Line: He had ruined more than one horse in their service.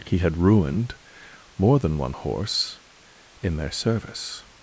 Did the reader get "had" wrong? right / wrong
right